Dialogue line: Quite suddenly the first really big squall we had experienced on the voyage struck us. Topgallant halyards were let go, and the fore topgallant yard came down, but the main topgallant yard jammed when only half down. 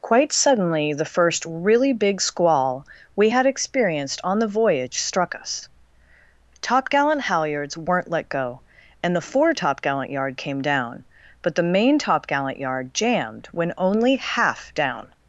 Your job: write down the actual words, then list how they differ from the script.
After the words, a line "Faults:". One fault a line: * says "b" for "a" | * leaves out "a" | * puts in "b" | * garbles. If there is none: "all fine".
Quite suddenly the first really big squall we had experienced on the voyage struck us. Topgallant halyards weren't let go, and the fore topgallant yard came down, but the main topgallant yard jammed when only half down.
Faults:
* says "weren't" for "were"